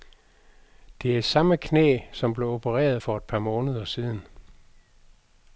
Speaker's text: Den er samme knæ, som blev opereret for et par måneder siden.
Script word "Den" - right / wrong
wrong